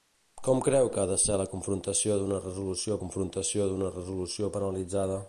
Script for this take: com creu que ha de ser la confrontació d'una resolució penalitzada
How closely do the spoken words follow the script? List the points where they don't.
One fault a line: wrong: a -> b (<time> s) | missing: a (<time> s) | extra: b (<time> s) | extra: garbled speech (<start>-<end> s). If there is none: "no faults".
extra: confrontació d'una resolució (3.0 s)